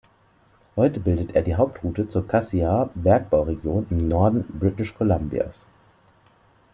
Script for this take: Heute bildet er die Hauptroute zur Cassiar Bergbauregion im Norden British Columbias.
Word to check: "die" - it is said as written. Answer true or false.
true